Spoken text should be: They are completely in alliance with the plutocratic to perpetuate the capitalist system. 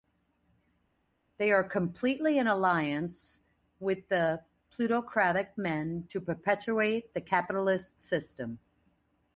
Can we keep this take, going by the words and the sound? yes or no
no